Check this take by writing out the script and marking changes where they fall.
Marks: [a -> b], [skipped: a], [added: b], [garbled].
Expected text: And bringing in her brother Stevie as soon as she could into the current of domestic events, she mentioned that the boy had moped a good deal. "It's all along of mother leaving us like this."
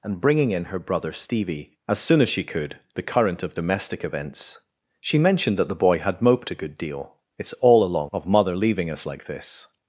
And bringing in her brother Stevie as soon as she could [skipped: into] the current of domestic events, she mentioned that the boy had moped a good deal. "It's all along of mother leaving us like this."